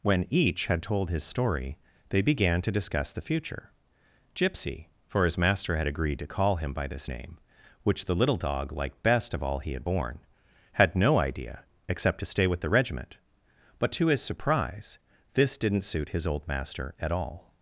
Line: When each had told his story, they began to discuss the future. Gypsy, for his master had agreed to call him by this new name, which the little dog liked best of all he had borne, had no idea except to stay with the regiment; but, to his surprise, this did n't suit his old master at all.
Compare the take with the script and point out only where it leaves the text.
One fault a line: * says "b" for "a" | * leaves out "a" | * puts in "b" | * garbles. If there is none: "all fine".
* leaves out "new"